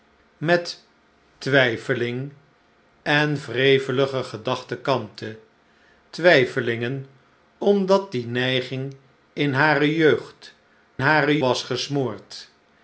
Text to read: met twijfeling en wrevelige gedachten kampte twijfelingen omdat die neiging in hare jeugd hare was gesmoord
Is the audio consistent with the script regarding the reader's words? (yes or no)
yes